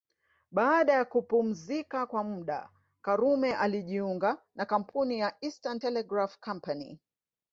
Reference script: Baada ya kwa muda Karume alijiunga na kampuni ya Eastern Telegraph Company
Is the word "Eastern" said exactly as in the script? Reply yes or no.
yes